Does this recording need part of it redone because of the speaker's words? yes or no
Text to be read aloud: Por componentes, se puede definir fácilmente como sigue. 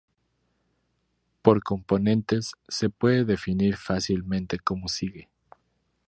no